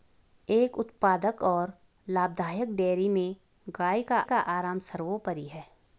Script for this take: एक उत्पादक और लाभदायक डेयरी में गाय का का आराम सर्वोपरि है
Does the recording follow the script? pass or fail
pass